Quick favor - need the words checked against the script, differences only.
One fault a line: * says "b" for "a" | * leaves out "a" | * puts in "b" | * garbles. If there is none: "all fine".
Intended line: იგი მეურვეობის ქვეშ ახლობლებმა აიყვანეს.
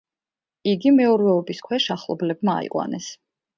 all fine